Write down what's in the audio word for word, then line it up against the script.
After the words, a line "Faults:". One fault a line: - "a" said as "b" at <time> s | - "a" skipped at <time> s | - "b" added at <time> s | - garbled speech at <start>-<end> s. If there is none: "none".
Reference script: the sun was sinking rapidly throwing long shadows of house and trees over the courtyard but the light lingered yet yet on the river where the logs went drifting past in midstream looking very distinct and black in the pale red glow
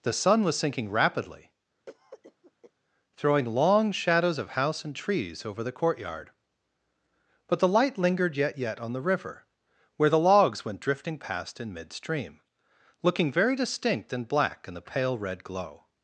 the sun was sinking rapidly throwing long shadows of house and trees over the courtyard but the light lingered yet yet on the river where the logs went drifting past in midstream looking very distinct and black in the pale red glow
Faults:
none